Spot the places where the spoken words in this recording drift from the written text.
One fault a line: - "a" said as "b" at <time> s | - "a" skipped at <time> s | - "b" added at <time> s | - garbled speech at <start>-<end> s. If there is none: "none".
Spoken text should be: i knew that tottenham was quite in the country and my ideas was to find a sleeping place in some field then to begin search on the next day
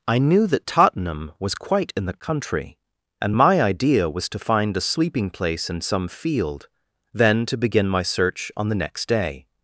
- "ideas" said as "idea" at 3.6 s
- "my" added at 7.9 s